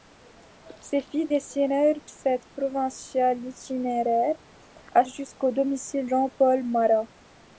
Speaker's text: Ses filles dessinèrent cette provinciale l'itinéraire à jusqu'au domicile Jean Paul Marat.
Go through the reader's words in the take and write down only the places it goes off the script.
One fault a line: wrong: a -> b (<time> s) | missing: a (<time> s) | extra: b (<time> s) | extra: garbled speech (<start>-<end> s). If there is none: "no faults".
no faults